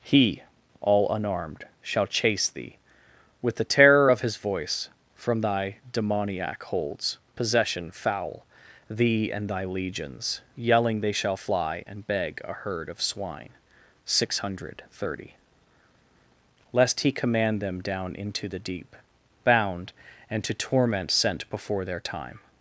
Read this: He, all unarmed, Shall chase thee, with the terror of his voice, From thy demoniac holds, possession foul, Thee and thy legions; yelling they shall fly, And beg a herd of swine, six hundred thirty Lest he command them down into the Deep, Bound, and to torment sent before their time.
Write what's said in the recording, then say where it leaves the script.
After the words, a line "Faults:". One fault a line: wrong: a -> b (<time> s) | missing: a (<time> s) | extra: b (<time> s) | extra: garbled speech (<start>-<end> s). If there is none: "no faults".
He, all unarmed, Shall chase thee, with the terror of his voice, From thy demoniac holds, possession foul, Thee and thy legions; yelling they shall fly, And beg a herd of swine, six hundred thirty Lest he command them down into the Deep, Bound, and to torment sent before their time.
Faults:
no faults